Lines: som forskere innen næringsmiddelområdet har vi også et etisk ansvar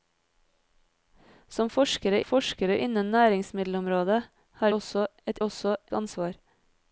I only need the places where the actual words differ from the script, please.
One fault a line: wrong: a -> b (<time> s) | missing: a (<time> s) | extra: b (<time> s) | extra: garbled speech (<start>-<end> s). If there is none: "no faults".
extra: forskere (2.2 s)
missing: vi (4.7 s)
wrong: etisk -> også (5.4 s)